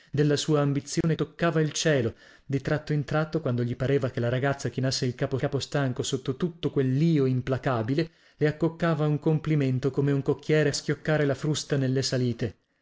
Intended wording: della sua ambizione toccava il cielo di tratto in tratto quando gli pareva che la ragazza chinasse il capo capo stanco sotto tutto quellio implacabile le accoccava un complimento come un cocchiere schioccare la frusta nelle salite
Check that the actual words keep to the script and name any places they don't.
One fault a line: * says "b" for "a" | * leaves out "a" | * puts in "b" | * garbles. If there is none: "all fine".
all fine